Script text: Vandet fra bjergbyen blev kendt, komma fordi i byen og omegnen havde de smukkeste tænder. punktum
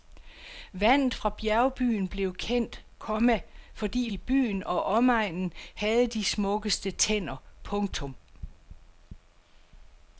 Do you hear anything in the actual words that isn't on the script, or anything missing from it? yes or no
no